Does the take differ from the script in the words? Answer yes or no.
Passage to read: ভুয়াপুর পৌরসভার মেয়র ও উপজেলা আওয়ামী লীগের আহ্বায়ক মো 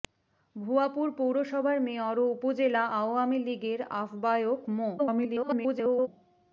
yes